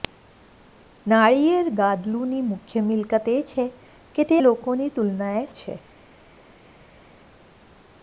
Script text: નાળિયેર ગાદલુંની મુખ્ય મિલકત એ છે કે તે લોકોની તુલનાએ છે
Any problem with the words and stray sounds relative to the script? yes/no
no